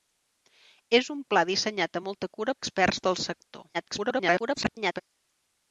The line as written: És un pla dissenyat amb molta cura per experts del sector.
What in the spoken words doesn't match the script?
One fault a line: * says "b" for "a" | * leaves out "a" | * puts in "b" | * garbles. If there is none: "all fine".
* leaves out "per"
* garbles